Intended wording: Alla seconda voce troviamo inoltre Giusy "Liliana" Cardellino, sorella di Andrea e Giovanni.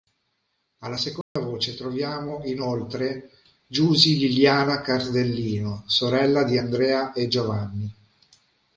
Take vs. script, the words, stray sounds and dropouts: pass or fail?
fail